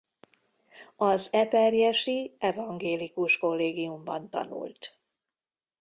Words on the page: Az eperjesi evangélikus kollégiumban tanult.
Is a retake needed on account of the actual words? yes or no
no